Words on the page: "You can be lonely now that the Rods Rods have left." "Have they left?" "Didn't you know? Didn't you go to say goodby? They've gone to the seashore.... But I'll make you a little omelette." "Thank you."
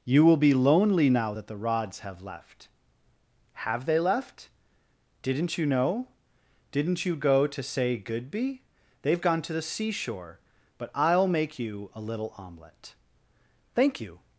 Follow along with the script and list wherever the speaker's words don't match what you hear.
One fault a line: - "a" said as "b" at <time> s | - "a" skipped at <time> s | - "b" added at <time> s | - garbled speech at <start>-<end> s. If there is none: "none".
- "can" said as "will" at 0.2 s
- "Rods" skipped at 2.0 s